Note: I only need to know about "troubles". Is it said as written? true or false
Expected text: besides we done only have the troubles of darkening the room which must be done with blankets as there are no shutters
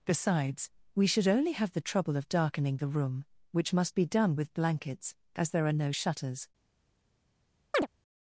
false